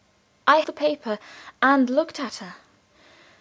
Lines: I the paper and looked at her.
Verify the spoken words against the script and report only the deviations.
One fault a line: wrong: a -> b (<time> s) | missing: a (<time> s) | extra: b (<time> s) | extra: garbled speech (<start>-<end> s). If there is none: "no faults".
no faults